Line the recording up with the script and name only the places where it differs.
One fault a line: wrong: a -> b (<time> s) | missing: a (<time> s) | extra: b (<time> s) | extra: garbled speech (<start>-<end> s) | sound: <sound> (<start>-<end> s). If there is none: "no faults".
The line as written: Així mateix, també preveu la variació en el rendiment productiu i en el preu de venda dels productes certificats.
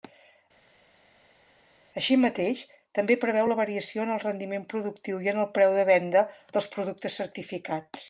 no faults